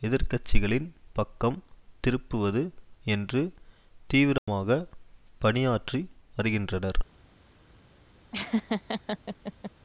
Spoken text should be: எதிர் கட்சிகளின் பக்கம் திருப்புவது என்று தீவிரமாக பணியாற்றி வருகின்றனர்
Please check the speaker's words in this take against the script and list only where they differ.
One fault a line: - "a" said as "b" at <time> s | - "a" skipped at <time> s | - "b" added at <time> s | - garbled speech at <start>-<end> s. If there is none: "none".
none